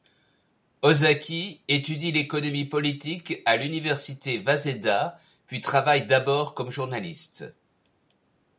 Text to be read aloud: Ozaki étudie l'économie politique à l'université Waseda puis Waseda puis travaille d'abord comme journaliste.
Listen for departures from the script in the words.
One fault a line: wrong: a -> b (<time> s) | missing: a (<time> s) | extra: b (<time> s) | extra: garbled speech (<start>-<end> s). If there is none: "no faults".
missing: Waseda puis (5.6 s)